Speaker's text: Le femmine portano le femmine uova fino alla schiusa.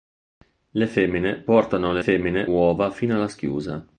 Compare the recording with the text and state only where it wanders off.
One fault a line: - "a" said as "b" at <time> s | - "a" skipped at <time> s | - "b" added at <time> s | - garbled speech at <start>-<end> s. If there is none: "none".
none